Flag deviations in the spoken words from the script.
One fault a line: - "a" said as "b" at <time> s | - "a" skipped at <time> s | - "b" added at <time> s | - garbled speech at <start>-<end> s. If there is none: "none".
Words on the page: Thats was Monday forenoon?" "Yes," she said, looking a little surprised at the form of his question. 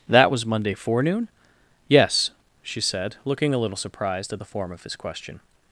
- "Thats" said as "That" at 0.1 s